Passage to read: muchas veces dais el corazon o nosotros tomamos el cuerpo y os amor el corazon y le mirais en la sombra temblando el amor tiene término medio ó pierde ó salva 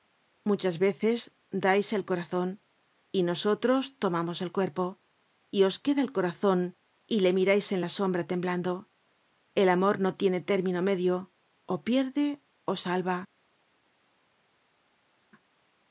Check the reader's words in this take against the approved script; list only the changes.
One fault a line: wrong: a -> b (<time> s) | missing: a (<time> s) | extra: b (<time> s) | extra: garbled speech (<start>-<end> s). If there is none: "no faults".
wrong: o -> y (3.1 s)
wrong: amor -> queda (5.8 s)
extra: no (10.0 s)